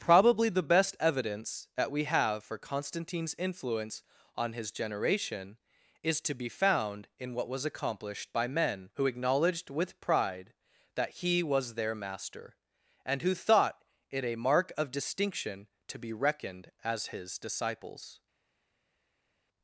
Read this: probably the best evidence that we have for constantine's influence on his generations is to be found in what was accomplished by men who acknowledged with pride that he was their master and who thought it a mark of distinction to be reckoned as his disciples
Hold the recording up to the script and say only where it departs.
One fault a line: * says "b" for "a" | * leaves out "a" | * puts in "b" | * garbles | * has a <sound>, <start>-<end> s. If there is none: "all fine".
* says "generation" for "generations"